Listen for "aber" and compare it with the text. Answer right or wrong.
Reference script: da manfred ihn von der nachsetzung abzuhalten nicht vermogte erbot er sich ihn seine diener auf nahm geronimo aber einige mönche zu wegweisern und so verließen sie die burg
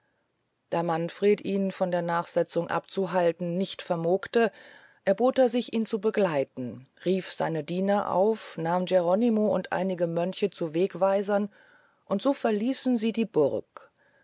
wrong